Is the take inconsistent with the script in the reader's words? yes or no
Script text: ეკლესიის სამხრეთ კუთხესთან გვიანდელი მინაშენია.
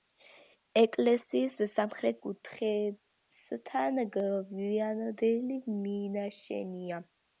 no